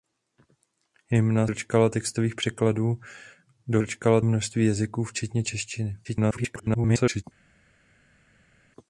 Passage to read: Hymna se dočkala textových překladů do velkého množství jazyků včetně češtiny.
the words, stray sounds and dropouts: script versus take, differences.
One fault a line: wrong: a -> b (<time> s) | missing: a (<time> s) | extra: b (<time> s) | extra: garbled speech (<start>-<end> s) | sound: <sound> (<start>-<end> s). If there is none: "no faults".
missing: se (1.5 s)
wrong: velkého -> dočkala (3.8 s)
extra: garbled speech (6.0-7.2 s)